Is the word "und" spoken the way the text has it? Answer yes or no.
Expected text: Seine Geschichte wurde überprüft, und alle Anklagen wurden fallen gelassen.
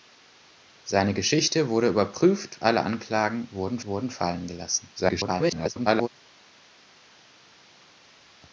no